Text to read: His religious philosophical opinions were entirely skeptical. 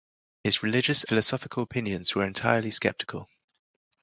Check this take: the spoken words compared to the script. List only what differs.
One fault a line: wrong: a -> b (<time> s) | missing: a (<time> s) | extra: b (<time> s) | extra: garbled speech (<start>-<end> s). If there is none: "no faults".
no faults